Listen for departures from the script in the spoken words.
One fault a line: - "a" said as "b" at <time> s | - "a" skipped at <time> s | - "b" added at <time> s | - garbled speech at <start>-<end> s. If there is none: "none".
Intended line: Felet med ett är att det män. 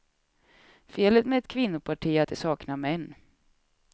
- "kvinnoparti" added at 1.5 s
- "saknar" added at 2.3 s